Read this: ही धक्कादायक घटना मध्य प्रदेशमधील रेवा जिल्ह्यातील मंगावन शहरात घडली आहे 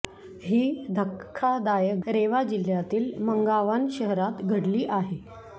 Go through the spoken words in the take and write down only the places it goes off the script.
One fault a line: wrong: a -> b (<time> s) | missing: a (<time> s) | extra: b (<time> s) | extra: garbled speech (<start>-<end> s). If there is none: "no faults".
missing: घटना मध्य प्रदेशमधील (2.0 s)